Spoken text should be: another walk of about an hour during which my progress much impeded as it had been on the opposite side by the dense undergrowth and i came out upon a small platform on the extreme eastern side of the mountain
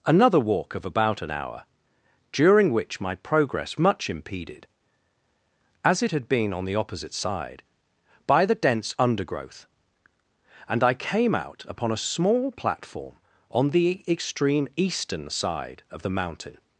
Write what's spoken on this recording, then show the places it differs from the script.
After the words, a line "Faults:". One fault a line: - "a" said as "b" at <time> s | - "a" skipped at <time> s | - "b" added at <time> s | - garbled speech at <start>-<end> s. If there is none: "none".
another walk of about an hour during which my progress much impeded as it had been on the opposite side by the dense undergrowth and i came out upon a small platform on the extreme eastern side of the mountain
Faults:
none